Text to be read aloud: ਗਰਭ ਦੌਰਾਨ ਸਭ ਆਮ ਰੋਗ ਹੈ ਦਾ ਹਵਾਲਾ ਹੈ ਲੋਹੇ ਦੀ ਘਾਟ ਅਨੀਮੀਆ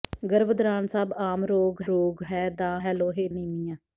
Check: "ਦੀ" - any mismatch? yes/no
yes